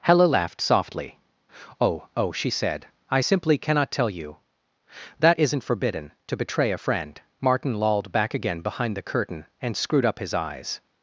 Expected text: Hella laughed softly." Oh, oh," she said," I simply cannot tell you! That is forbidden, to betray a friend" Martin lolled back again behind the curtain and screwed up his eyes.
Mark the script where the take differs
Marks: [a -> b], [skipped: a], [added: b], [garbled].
Hella laughed softly." Oh, oh," she said," I simply cannot tell you! That [is -> isn't] forbidden, to betray a friend" Martin lolled back again behind the curtain and screwed up his eyes.